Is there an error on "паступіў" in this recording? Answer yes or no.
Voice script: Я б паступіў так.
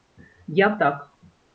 yes